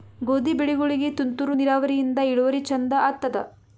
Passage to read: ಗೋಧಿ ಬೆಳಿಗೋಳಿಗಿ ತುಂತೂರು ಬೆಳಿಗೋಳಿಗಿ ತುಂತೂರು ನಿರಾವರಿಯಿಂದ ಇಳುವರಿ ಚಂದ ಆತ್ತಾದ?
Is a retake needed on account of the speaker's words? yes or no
yes